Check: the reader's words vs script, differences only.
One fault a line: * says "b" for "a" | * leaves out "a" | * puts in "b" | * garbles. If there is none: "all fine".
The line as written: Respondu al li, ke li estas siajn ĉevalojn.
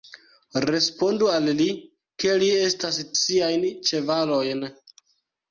all fine